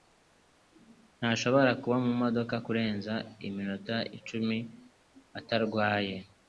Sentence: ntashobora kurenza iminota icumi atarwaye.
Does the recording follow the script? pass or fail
fail